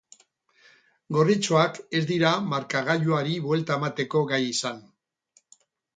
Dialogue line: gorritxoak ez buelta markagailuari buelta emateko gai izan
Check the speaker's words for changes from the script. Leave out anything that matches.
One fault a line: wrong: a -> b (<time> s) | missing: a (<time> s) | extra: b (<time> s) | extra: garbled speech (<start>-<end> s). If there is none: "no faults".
wrong: buelta -> dira (2.1 s)